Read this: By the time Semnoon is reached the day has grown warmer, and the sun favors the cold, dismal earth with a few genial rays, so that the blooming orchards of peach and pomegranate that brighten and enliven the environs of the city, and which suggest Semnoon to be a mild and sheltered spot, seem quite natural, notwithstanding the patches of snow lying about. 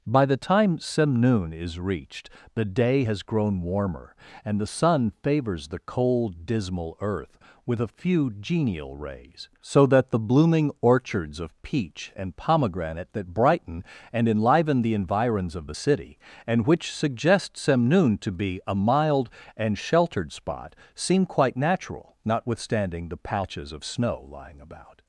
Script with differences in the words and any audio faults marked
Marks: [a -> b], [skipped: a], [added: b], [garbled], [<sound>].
By the time Semnoon is reached the day has grown warmer, and the sun favors the cold, dismal earth with a few genial rays, so that the blooming orchards of peach and pomegranate that brighten and enliven the environs of the city, and which suggest Semnoon to be a mild and sheltered spot, seem quite natural, notwithstanding the patches of snow lying about.